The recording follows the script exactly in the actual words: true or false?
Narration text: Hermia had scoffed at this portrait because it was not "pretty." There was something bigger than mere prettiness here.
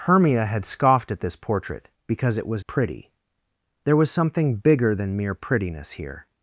false